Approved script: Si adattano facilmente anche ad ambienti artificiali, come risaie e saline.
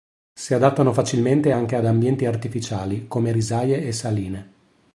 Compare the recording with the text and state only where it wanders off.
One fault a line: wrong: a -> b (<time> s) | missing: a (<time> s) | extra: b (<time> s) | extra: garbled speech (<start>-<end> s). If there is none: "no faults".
no faults